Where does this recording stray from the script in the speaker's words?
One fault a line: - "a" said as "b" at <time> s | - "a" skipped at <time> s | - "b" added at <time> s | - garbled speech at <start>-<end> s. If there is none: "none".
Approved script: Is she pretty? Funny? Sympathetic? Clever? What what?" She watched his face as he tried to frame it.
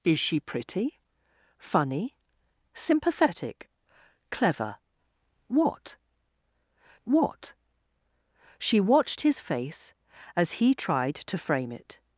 none